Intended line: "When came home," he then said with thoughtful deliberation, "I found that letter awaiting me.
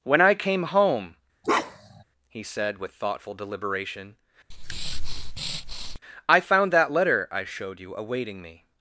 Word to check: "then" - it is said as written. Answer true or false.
false